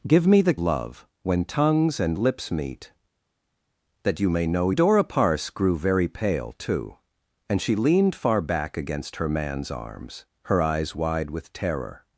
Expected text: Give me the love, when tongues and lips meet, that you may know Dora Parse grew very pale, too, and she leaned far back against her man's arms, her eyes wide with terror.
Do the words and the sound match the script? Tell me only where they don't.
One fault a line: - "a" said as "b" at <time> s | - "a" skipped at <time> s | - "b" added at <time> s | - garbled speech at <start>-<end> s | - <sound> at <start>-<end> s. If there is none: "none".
none